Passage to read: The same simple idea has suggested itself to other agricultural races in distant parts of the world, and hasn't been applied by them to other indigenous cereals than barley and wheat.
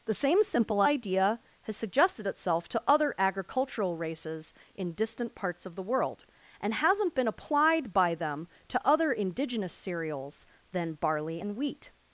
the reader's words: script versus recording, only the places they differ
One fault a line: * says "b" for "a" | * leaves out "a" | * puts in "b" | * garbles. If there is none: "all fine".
all fine